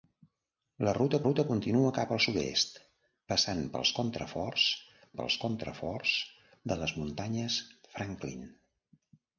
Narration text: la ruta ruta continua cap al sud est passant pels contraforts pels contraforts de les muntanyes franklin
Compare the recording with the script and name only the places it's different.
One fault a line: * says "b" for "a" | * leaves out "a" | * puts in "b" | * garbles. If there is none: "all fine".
all fine